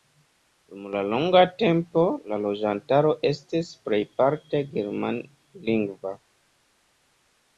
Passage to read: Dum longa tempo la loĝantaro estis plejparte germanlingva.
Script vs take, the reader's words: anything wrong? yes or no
no